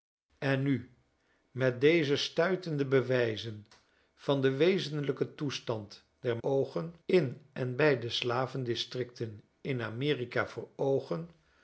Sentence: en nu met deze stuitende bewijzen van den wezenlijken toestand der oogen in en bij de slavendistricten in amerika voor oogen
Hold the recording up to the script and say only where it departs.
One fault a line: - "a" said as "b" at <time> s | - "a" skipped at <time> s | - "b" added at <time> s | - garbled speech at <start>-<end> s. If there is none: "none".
none